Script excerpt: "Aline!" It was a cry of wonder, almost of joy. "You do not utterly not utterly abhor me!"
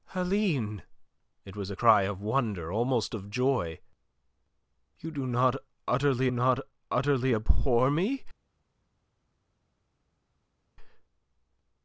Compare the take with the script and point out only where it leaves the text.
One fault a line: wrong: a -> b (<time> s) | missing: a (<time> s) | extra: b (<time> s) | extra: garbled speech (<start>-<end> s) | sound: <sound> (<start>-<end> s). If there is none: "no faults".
no faults